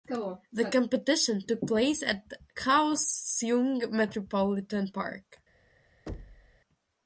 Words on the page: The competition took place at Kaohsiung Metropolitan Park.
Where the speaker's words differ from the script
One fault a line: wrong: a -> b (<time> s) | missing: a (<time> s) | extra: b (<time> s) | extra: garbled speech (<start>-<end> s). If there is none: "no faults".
no faults